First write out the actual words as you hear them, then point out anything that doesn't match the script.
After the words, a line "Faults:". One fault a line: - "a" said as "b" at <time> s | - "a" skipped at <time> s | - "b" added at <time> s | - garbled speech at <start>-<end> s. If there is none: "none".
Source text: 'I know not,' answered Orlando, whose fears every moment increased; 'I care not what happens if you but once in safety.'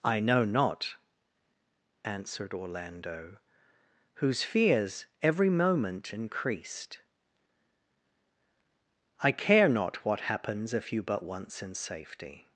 'I know not,' answered Orlando, whose fears every moment increased; 'I care not what happens if you but once in safety.'
Faults:
none